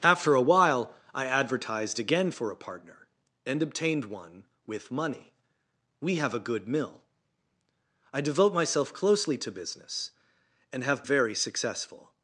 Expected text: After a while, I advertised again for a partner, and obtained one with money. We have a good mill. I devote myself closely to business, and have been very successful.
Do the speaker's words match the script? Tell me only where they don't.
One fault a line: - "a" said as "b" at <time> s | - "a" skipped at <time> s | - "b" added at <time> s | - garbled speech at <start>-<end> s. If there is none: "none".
- "been" skipped at 11.0 s